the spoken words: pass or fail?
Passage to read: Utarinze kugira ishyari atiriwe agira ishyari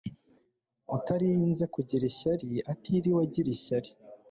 pass